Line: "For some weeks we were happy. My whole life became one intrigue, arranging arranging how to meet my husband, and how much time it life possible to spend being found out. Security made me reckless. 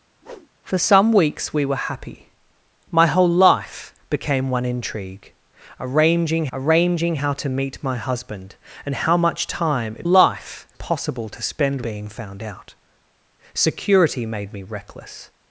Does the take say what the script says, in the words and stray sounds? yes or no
no